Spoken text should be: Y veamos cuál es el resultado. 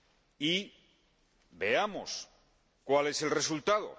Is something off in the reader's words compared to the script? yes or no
no